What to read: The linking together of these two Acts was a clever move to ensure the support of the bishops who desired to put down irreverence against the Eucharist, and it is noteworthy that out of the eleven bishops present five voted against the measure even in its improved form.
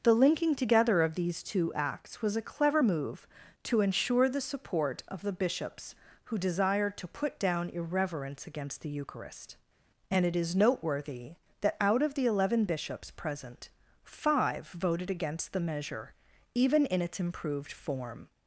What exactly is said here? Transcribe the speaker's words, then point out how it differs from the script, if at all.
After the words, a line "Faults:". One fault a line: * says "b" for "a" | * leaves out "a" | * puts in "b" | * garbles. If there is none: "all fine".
The linking together of these two Acts was a clever move to ensure the support of the bishops who desired to put down irreverence against the Eucharist, and it is noteworthy that out of the eleven bishops present five voted against the measure even in its improved form.
Faults:
all fine